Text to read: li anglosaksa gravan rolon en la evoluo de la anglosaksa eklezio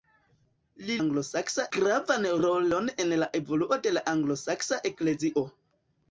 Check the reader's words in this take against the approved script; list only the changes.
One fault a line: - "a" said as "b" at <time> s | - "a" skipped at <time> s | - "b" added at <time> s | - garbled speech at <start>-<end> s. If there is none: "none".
none